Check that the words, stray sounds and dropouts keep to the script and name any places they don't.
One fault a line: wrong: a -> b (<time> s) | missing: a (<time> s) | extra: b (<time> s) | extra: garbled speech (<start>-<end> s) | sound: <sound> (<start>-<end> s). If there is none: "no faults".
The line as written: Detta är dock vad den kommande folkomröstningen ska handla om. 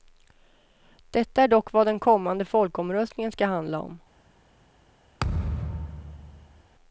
sound: thud (5.2-6.6 s)